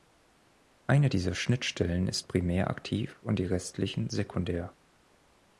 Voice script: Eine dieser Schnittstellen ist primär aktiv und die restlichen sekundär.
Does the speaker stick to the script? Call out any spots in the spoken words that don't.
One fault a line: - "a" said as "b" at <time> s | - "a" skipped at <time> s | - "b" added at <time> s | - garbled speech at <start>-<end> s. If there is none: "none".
none